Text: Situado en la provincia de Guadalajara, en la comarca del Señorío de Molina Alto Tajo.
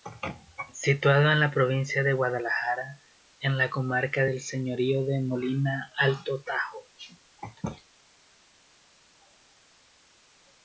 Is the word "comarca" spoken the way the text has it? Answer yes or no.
yes